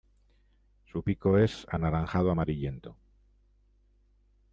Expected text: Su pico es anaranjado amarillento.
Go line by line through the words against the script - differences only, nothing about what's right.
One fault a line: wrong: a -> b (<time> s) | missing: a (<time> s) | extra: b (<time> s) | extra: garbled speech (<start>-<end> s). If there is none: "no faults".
no faults